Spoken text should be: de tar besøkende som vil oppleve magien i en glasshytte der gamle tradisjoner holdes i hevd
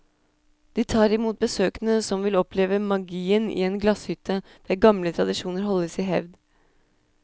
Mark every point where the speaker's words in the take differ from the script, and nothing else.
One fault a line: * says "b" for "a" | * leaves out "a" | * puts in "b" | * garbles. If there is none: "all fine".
* puts in "imot"